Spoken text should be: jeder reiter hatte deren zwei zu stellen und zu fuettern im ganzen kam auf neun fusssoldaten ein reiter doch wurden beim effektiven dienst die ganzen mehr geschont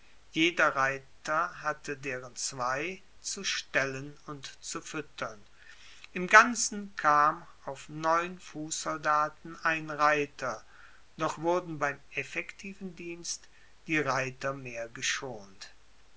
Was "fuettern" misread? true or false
false